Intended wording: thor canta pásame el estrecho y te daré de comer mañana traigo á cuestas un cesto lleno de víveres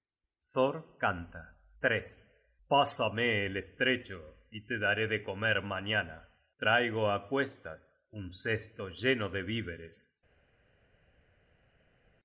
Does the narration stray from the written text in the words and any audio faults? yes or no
no